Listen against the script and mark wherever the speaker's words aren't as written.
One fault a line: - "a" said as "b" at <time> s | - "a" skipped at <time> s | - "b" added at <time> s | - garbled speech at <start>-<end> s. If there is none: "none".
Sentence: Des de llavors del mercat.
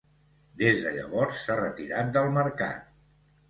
- "s'ha retirat" added at 1.4 s